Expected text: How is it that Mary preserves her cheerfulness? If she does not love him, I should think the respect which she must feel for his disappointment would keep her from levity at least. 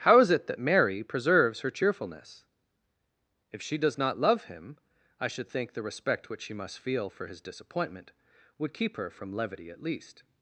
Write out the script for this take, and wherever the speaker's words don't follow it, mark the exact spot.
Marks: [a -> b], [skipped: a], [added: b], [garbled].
How is it that Mary preserves her cheerfulness? If she does not love him, I should think the respect which she must feel for his disappointment would keep her from levity at least.